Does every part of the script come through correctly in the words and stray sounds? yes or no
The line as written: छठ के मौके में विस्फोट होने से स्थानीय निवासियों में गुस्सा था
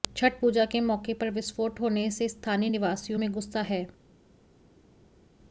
no